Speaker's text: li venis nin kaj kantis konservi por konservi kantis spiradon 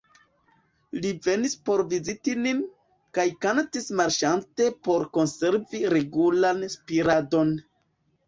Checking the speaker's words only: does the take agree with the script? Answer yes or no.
no